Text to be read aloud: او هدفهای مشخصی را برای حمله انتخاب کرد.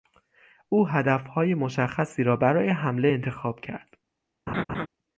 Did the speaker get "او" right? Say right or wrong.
right